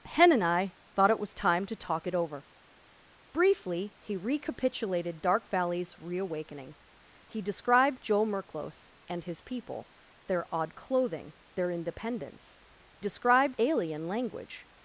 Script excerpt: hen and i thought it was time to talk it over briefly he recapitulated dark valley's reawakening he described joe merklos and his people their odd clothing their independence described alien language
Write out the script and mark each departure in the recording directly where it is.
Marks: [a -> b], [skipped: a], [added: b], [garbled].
hen and i thought it was time to talk it over briefly he recapitulated dark valley's reawakening he described joe merklos and his people their odd clothing their independence described alien language